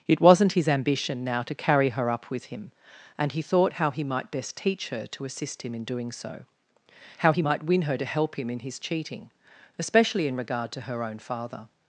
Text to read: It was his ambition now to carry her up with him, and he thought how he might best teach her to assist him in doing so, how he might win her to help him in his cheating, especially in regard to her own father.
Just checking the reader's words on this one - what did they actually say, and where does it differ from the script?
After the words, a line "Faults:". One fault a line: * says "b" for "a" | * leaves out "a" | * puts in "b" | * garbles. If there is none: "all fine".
It wasn't his ambition now to carry her up with him, and he thought how he might best teach her to assist him in doing so, how he might win her to help him in his cheating, especially in regard to her own father.
Faults:
* says "wasn't" for "was"